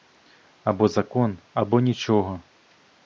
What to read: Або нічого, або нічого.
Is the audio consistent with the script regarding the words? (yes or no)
no